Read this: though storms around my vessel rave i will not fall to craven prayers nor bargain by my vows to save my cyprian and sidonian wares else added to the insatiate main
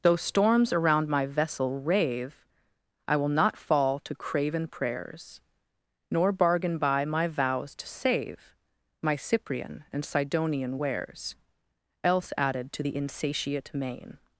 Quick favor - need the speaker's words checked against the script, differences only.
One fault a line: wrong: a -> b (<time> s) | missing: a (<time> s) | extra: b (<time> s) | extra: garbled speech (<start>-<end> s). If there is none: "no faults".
no faults